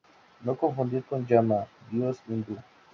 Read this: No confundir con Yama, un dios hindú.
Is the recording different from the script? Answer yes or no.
yes